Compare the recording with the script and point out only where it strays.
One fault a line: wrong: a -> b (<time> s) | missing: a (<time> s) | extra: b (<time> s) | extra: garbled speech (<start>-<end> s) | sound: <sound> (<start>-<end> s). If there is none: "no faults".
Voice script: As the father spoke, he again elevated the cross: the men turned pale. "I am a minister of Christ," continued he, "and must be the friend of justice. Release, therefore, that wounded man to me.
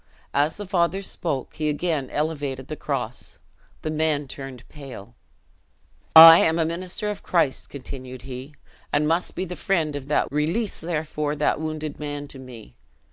wrong: justice -> that (10.0 s)